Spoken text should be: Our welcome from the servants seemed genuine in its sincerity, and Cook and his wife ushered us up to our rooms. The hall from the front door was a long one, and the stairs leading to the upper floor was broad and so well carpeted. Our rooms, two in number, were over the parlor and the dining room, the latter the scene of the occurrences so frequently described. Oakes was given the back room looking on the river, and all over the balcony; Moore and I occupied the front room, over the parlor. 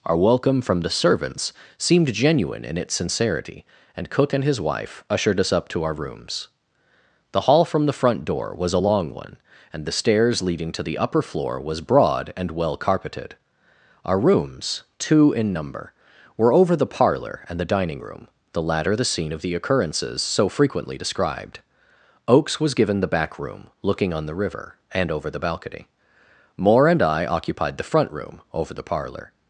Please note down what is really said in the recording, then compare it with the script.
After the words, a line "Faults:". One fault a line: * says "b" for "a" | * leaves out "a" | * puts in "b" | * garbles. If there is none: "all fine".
Our welcome from the servants seemed genuine in its sincerity, and Cook and his wife ushered us up to our rooms. The hall from the front door was a long one, and the stairs leading to the upper floor was broad and well carpeted. Our rooms, two in number, were over the parlor and the dining room, the latter the scene of the occurrences so frequently described. Oakes was given the back room looking on the river, and over the balcony; Moore and I occupied the front room, over the parlor.
Faults:
* leaves out "so"
* leaves out "all"